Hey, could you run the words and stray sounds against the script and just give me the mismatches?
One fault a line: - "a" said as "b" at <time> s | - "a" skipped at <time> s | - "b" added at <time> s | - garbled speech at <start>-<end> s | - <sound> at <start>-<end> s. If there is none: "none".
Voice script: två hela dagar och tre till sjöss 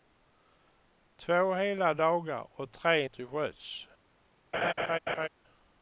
- laugh at 4.5-5.3 s